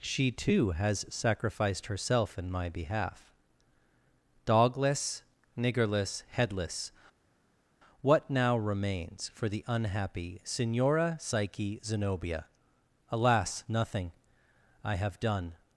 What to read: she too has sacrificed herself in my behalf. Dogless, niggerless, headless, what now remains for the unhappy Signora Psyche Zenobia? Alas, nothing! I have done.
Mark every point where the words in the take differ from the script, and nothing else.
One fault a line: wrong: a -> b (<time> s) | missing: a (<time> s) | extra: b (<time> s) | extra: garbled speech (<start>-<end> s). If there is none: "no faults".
no faults